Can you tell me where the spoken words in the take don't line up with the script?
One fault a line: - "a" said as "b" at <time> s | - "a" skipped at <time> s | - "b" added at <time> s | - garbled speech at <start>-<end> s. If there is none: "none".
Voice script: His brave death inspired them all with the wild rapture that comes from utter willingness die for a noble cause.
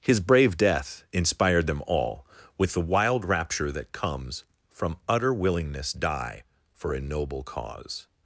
none